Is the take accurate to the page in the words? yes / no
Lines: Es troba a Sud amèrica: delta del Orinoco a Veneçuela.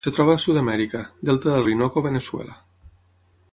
yes